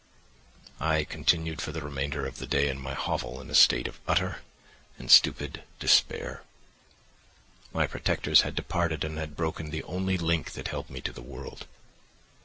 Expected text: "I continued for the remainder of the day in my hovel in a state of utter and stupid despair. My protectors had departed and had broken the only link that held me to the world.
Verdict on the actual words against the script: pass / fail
pass